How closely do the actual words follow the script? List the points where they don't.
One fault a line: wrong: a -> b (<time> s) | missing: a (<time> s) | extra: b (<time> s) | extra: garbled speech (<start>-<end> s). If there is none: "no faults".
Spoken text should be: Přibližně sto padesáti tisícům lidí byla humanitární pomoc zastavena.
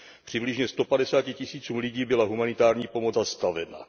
no faults